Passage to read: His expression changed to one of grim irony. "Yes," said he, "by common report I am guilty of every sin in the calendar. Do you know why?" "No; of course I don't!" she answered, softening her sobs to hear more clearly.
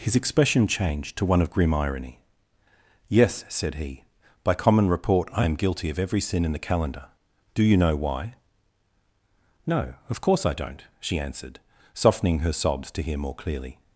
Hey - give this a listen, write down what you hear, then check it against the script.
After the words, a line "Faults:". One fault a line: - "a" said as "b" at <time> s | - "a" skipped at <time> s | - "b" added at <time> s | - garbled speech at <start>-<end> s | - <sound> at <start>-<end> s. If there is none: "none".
His expression changed to one of grim irony. "Yes," said he, "by common report I am guilty of every sin in the calendar. Do you know why?" "No; of course I don't!" she answered, softening her sobs to hear more clearly.
Faults:
none